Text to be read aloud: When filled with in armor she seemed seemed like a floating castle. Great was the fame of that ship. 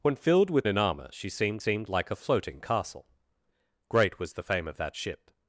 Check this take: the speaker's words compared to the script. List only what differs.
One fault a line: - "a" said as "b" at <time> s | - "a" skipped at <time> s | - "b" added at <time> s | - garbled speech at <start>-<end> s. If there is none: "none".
none